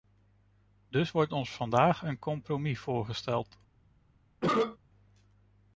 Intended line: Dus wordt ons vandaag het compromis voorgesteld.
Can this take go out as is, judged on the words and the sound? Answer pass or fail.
fail